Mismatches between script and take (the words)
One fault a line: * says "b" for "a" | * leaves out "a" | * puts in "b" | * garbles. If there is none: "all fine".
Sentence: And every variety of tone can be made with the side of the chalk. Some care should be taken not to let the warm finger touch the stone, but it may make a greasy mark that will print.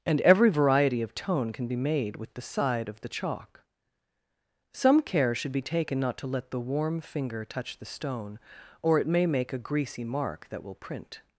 * says "or" for "but"